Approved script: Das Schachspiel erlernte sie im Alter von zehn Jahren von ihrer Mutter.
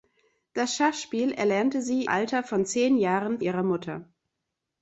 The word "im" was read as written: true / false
false